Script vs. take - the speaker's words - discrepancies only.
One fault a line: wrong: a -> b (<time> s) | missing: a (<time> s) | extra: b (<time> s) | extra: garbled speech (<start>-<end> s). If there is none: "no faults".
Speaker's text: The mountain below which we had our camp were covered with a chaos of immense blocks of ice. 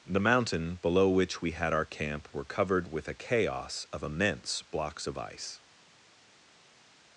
no faults